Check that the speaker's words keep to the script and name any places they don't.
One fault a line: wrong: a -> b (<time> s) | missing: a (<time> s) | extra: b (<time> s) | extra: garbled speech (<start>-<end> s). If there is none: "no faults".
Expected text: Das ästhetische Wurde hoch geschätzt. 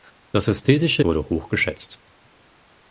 no faults